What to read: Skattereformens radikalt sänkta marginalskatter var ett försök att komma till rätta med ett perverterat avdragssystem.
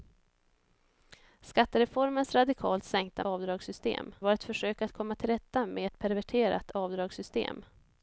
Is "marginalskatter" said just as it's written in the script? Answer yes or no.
no